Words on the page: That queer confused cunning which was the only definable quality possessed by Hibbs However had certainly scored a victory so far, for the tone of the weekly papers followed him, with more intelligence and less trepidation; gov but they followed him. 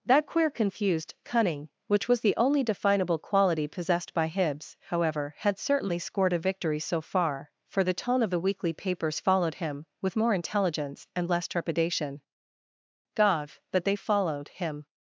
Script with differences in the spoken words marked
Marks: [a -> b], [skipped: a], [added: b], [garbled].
That queer confused cunning which was the only definable quality possessed by Hibbs However had certainly scored a victory so far, for the tone of the weekly papers followed him, with more intelligence and less trepidation; gov but they followed him.